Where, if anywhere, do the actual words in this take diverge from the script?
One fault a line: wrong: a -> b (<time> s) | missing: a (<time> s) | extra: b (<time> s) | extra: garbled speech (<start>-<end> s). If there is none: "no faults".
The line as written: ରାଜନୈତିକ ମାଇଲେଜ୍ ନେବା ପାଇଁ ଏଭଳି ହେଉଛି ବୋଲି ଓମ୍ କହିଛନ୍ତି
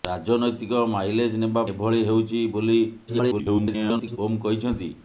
missing: ପାଇଁ (1.6 s)
extra: garbled speech (3.1-4.2 s)